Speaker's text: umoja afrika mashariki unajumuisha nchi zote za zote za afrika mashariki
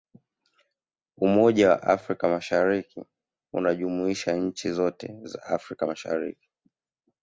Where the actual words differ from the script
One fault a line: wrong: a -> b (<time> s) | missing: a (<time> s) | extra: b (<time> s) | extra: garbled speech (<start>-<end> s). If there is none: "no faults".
extra: wa (1.7 s)
missing: zote za (5.4 s)